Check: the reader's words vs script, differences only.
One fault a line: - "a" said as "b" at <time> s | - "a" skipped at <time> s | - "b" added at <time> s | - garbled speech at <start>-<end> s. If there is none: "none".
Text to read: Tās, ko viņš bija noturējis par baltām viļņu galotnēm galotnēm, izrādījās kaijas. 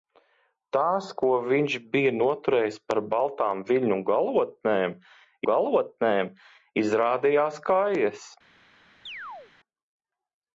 none